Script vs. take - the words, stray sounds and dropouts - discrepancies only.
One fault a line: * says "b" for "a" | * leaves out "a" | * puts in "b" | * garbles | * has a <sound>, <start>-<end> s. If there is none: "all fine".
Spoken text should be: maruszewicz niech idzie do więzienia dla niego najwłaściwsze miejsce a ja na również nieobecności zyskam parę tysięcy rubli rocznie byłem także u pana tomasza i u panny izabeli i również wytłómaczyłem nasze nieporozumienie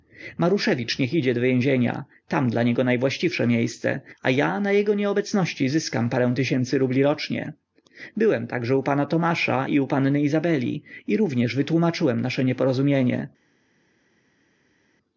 * puts in "tam"
* says "jego" for "również"